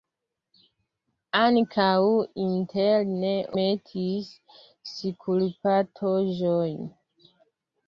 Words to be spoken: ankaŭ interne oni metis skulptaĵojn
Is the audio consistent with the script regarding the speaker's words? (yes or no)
no